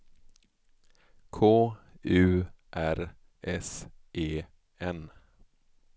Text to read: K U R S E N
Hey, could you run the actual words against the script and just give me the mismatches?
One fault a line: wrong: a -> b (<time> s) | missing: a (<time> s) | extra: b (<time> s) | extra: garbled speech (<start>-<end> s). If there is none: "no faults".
no faults